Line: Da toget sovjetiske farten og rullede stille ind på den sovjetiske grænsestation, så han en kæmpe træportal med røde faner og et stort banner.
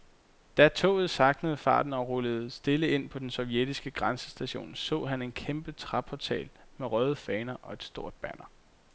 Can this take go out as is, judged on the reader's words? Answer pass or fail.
fail